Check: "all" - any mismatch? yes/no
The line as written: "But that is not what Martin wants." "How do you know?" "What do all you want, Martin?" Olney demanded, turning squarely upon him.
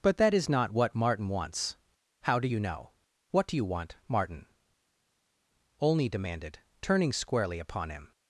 yes